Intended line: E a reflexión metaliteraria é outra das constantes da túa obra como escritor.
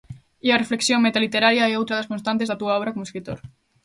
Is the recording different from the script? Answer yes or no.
no